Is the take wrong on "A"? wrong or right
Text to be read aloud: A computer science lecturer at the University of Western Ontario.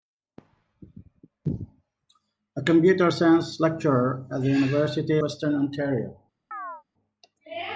right